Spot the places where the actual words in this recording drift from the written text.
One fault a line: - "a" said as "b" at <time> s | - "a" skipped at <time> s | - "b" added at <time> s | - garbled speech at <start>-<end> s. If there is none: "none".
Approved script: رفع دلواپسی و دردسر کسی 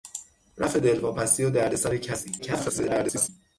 - garbled speech at 2.4-3.3 s